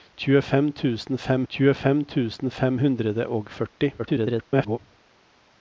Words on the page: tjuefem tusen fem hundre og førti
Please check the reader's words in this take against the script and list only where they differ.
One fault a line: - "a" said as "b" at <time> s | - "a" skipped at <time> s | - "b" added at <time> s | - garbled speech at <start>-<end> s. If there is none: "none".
- "tjuefem tusen fem" added at 1.5 s
- garbled speech at 4.0-4.8 s